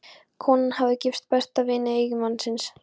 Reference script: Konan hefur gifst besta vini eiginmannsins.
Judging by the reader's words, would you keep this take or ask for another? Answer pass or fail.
fail